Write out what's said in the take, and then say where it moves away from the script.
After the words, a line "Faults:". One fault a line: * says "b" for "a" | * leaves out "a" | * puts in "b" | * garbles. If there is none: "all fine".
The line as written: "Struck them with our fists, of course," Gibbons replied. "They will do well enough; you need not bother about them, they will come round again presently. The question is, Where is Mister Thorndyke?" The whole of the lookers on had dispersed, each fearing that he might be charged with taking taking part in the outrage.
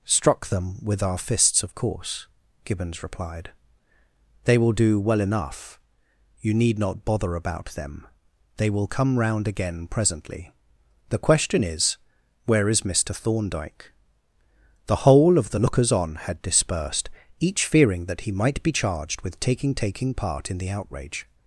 "Struck them with our fists, of course," Gibbons replied. "They will do well enough; you need not bother about them, they will come round again presently. The question is, Where is Mister Thorndyke?" The whole of the lookers on had dispersed, each fearing that he might be charged with taking taking part in the outrage.
Faults:
all fine